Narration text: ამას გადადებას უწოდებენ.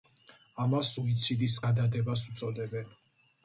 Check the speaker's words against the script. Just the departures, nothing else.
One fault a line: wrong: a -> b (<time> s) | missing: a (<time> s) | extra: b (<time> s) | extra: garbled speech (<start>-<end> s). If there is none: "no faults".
extra: სუიციდის (0.9 s)